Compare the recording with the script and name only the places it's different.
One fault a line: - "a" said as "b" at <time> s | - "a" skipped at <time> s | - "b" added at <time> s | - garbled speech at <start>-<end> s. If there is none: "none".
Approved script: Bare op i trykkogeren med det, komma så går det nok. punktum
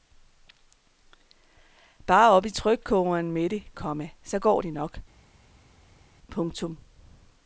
none